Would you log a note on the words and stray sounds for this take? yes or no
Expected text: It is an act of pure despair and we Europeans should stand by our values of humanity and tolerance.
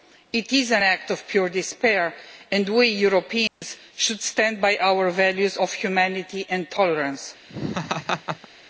yes